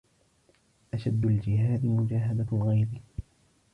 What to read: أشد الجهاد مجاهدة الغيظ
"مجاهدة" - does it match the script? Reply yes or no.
yes